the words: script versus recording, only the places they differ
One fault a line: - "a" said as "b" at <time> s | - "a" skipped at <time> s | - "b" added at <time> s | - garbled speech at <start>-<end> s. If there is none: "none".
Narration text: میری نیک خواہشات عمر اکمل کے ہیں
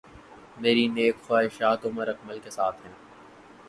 - "ساتھ" added at 2.5 s